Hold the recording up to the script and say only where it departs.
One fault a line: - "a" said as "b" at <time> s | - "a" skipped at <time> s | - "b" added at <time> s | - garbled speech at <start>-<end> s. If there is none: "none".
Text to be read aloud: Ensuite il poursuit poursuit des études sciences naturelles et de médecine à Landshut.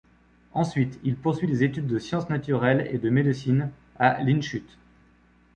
- "poursuit" skipped at 1.5 s
- "de" added at 1.9 s